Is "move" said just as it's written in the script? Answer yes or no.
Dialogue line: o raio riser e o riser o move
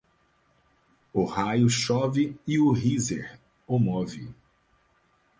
yes